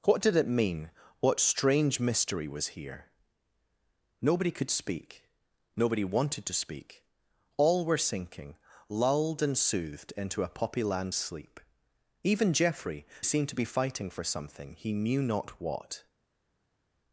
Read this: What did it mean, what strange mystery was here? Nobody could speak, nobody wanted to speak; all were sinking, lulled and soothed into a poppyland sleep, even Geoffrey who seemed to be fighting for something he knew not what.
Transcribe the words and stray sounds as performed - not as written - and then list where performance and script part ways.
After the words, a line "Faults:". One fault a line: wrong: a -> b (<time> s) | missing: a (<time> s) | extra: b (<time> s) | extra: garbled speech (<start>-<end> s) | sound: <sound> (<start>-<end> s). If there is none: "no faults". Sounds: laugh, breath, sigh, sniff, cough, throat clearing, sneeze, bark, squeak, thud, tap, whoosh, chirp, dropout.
What did it mean, what strange mystery was here? Nobody could speak, nobody wanted to speak; all were sinking, lulled and soothed into a poppyland sleep, even Geoffrey seemed to be fighting for something he knew not what.
Faults:
missing: who (13.0 s)